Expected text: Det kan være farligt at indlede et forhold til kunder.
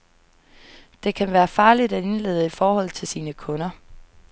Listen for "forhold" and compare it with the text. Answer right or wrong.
right